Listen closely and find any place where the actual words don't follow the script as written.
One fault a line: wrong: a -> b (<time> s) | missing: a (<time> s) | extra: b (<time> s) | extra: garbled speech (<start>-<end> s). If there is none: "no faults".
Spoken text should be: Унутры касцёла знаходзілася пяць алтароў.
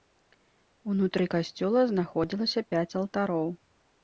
no faults